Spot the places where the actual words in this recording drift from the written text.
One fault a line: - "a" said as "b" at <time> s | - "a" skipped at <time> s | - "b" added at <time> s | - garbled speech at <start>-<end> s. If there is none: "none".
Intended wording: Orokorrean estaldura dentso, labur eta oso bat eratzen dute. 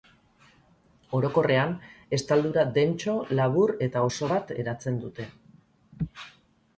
none